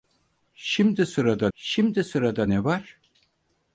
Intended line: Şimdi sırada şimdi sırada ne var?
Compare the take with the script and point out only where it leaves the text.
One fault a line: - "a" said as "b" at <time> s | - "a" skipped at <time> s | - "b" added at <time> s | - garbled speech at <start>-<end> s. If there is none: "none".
none